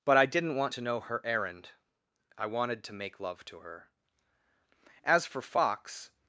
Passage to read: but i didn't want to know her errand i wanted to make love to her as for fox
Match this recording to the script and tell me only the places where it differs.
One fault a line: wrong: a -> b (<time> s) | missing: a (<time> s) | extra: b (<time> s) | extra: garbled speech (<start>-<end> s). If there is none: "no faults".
no faults